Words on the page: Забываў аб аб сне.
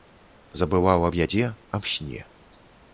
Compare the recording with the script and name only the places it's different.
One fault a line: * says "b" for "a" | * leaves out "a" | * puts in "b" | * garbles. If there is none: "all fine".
* puts in "ядзе"